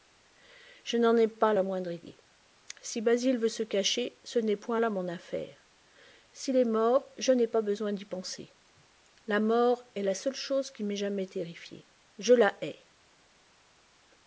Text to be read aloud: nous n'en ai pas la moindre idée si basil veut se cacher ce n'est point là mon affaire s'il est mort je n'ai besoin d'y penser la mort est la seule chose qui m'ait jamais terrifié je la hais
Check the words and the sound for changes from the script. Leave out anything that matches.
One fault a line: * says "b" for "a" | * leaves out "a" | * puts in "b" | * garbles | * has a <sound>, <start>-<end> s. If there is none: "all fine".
* says "je" for "nous"
* puts in "pas"